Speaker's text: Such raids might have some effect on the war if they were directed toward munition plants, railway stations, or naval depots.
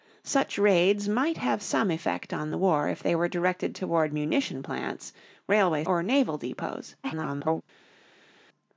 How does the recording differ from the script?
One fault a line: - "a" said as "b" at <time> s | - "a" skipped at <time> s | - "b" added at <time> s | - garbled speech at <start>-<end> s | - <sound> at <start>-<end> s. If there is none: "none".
- "stations" skipped at 5.8 s
- garbled speech at 7.0-7.6 s